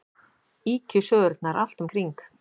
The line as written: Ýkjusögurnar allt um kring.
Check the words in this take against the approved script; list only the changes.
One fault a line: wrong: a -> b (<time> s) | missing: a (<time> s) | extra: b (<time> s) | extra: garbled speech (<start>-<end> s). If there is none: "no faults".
no faults